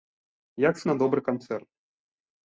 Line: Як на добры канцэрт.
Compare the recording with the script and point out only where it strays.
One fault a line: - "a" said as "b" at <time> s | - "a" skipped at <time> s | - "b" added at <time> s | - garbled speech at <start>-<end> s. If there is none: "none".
none